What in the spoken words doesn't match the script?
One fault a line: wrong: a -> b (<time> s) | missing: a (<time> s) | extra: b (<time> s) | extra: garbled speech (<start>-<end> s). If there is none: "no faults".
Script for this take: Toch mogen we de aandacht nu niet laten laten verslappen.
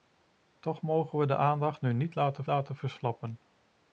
no faults